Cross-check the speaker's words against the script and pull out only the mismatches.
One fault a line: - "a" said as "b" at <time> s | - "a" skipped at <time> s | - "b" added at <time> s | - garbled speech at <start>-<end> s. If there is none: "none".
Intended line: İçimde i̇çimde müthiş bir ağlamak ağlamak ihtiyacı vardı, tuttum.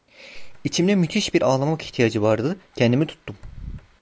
- "i̇çimde" skipped at 0.9 s
- "ağlamak" skipped at 1.8 s
- "kendimi" added at 2.8 s